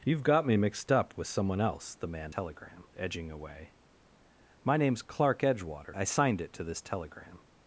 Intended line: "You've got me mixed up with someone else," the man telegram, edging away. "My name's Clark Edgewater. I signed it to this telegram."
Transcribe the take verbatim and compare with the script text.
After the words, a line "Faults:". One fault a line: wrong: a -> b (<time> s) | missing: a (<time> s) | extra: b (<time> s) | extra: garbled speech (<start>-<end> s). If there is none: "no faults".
"You've got me mixed up with someone else," the man telegram, edging away. "My name's Clark Edgewater. I signed it to this telegram."
Faults:
no faults